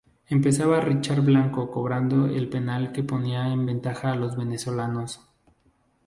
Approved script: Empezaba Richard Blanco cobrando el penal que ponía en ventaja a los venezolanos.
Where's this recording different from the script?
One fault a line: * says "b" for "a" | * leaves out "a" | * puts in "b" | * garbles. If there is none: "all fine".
all fine